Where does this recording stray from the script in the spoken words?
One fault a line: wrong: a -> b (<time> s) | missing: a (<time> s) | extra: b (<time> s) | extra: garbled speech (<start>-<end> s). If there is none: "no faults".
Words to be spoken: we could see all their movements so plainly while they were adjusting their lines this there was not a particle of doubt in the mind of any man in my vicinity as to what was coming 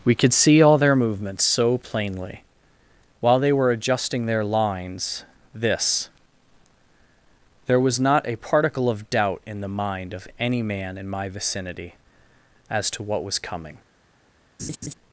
no faults